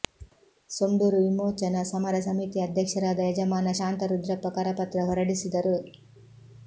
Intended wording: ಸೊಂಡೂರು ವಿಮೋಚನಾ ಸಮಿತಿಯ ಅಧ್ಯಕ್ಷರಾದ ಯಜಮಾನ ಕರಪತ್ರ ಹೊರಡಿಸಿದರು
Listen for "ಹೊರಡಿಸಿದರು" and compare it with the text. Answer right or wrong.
right